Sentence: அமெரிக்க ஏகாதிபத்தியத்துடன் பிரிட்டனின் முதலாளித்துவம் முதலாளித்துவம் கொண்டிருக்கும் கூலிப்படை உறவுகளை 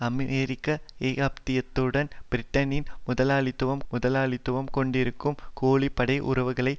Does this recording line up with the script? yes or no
yes